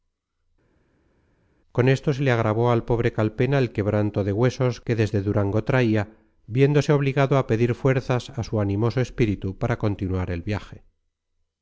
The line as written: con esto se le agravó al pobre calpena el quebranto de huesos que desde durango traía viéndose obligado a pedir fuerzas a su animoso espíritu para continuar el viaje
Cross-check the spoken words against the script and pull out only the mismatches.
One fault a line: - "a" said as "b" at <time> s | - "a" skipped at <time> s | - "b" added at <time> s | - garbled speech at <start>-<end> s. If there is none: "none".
none